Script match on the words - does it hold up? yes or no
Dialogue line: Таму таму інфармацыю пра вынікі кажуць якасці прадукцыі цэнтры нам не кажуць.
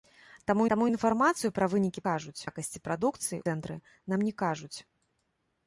yes